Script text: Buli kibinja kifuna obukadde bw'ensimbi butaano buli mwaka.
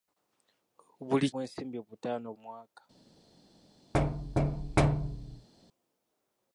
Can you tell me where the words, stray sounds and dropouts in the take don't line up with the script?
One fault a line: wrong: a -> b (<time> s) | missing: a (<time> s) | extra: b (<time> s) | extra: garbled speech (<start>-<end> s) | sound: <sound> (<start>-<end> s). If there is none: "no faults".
missing: kibinja kifuna obukadde (1.3 s)
missing: buli (2.3 s)
sound: thud (3.9-5.5 s)